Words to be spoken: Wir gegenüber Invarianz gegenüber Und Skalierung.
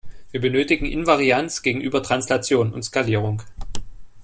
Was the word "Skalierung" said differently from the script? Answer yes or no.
no